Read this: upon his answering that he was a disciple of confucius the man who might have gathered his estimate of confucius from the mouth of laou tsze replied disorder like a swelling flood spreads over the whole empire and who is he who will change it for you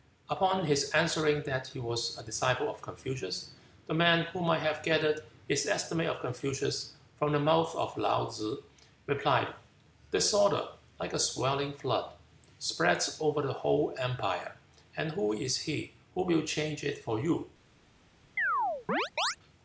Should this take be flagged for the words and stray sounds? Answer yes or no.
yes